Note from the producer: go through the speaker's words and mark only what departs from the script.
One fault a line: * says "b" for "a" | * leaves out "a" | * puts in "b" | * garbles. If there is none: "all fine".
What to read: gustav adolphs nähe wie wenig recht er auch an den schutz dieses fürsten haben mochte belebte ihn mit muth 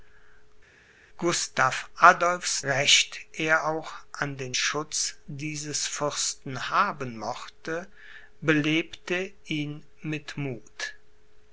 * leaves out "nähe wie wenig"